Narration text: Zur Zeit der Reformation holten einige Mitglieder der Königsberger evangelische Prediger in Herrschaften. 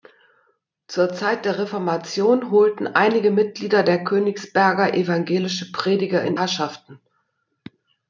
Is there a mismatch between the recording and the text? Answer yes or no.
no